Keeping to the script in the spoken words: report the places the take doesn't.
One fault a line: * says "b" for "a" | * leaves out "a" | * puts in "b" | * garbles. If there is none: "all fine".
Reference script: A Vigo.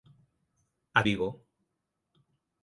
all fine